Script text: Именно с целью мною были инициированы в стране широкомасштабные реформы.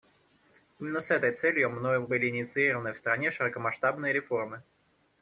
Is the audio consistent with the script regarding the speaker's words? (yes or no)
no